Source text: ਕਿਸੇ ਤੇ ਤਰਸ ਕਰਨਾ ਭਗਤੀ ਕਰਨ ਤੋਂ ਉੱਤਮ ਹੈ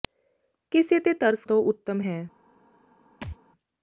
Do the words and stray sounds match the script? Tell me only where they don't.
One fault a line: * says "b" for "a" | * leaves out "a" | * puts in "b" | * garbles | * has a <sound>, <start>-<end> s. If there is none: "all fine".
* leaves out "ਕਰਨਾ ਭਗਤੀ ਕਰਨ"
* has a thud, 3.2-3.4 s